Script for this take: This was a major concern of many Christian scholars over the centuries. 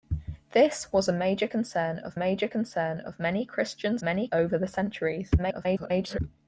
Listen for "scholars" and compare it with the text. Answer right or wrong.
wrong